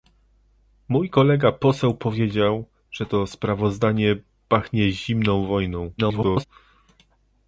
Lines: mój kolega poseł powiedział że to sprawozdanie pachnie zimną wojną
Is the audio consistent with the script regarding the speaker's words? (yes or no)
no